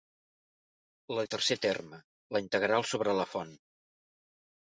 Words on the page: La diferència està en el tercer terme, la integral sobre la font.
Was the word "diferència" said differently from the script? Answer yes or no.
yes